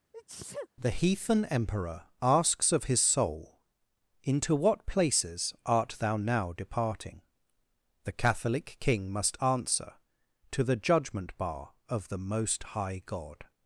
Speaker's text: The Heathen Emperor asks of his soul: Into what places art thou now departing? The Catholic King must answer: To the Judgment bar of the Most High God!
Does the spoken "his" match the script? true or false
true